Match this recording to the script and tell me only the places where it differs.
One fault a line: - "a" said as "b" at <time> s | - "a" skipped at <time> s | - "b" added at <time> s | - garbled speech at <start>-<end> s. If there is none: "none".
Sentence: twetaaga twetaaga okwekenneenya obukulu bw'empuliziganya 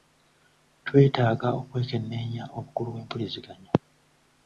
- "twetaaga" skipped at 1.5 s